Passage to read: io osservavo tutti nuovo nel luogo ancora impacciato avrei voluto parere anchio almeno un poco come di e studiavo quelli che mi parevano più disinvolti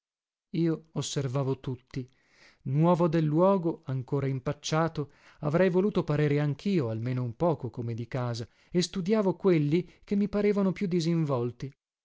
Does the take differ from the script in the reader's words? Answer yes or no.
yes